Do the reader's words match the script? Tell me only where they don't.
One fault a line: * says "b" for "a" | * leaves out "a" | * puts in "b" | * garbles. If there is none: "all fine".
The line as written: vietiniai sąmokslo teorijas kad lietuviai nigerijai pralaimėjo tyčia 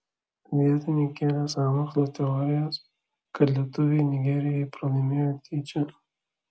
* puts in "kėlė"